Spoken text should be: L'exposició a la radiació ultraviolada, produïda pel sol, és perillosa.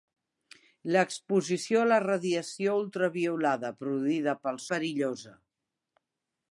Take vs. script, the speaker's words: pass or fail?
fail